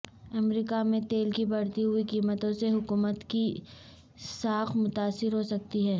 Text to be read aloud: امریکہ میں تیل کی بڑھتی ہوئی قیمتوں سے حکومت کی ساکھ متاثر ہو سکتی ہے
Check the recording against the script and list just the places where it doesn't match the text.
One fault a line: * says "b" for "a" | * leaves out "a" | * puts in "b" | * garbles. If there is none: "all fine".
all fine